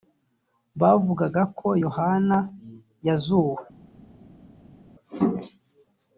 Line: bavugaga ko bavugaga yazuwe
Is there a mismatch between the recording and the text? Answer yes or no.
yes